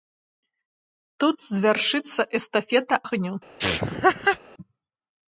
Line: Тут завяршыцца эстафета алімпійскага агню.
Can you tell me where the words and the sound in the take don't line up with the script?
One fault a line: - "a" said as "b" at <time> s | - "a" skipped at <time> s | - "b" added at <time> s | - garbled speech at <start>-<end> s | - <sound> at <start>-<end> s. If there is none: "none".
- "алімпійскага" skipped at 3.0 s
- laugh at 3.6-4.4 s